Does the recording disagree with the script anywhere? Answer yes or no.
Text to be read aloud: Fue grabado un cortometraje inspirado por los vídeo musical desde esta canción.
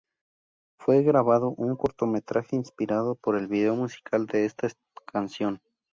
yes